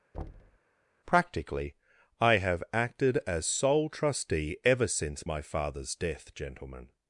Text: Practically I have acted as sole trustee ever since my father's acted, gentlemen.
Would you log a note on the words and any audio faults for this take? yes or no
yes